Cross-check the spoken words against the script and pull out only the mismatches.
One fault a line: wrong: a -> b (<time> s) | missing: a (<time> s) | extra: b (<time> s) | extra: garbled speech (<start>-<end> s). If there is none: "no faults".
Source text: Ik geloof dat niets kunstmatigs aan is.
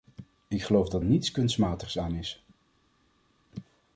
no faults